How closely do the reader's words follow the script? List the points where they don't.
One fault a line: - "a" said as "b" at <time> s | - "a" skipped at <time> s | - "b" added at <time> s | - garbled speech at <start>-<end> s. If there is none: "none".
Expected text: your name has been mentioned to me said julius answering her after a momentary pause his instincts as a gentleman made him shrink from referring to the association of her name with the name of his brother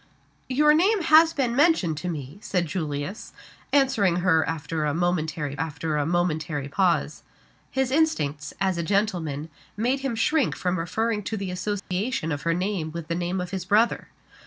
- "after a momentary" added at 5.6 s